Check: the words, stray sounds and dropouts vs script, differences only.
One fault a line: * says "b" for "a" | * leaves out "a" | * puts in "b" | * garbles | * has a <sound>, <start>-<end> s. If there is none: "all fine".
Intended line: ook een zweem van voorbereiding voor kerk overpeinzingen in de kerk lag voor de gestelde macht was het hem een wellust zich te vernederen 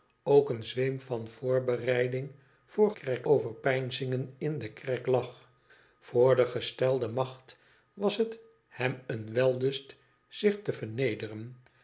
all fine